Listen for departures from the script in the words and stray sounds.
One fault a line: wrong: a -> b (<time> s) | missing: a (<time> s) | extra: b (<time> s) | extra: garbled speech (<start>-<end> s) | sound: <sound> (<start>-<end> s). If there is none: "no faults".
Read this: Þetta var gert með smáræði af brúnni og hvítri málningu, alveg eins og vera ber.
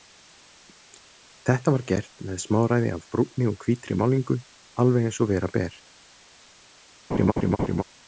sound: laugh (7.1-7.8 s)